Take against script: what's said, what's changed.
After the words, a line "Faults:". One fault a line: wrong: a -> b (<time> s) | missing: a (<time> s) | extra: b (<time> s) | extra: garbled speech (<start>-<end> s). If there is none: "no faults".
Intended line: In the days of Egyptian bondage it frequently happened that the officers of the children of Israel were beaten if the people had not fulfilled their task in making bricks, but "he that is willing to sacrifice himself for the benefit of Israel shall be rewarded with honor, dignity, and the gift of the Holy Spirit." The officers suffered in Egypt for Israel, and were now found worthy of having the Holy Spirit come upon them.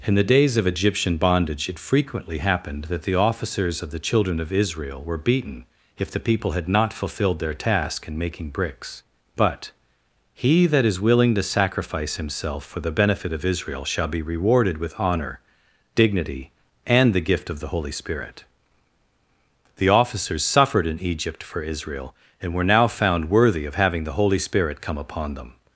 In the days of Egyptian bondage it frequently happened that the officers of the children of Israel were beaten if the people had not fulfilled their task in making bricks, but "he that is willing to sacrifice himself for the benefit of Israel shall be rewarded with honor, dignity, and the gift of the Holy Spirit." The officers suffered in Egypt for Israel, and were now found worthy of having the Holy Spirit come upon them.
Faults:
no faults